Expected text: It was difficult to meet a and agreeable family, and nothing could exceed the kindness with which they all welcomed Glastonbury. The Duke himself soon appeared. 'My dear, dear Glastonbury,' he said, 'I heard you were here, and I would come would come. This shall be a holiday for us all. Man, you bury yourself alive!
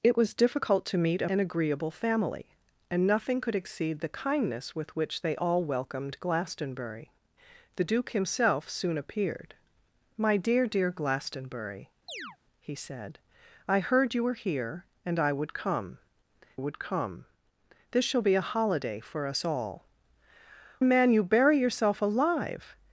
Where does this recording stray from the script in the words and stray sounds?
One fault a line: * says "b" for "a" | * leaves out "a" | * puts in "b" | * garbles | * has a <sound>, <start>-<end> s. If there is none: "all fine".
* has a chirp, 12.1-12.4 s